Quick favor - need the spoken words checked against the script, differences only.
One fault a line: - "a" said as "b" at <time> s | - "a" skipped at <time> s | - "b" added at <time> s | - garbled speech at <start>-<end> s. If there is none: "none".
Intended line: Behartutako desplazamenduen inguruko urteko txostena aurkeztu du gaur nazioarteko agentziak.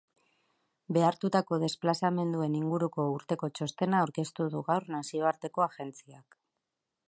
none